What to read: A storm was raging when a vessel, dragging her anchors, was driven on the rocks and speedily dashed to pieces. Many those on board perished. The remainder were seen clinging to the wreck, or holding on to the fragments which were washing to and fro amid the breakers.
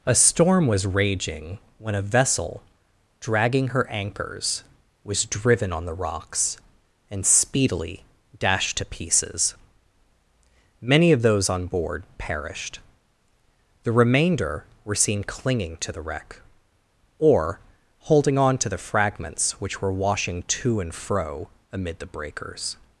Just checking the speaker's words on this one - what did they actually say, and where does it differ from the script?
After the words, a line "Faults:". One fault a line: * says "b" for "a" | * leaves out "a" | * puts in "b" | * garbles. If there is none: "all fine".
A storm was raging when a vessel, dragging her anchors, was driven on the rocks and speedily dashed to pieces. Many of those on board perished. The remainder were seen clinging to the wreck, or holding on to the fragments which were washing to and fro amid the breakers.
Faults:
* puts in "of"